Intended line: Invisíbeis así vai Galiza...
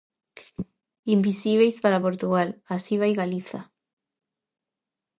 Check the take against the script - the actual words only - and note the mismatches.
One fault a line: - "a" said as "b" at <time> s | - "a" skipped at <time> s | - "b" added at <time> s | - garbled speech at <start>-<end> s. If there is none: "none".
- "para Portugal" added at 1.8 s